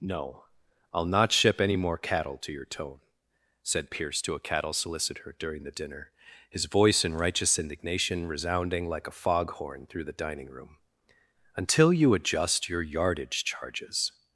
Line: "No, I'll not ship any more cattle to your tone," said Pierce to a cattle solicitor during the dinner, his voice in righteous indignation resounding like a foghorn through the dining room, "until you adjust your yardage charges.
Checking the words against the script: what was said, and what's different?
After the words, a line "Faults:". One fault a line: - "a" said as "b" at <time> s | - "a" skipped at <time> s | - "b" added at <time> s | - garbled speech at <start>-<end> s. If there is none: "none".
"No, I'll not ship any more cattle to your tone," said Pierce to a cattle solicitor during the dinner, his voice in righteous indignation resounding like a foghorn through the dining room, "until you adjust your yardage charges.
Faults:
none